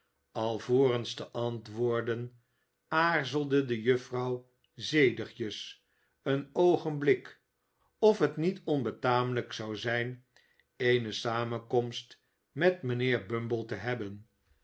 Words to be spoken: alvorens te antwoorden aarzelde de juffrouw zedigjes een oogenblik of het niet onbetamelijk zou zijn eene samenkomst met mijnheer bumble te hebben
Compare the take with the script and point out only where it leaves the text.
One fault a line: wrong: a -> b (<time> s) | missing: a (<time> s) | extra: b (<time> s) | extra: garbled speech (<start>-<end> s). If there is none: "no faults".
no faults